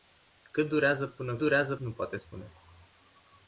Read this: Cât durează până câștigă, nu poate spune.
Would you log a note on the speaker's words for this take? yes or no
yes